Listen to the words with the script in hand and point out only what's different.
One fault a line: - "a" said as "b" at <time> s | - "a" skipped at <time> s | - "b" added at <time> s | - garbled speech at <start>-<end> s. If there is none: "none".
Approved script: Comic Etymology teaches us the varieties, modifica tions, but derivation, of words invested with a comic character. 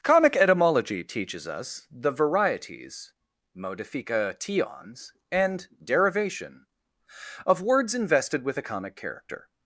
- "but" said as "and" at 5.3 s